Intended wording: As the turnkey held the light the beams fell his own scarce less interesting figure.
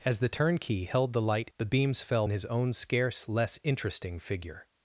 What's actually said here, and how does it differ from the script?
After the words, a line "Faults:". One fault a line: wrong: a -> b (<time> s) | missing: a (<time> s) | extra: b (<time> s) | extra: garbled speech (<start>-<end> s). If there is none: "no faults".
As the turnkey held the light the beams fell his own scarce less interesting figure.
Faults:
no faults